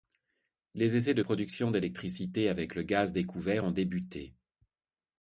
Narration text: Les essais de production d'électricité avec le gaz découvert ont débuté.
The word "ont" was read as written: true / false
true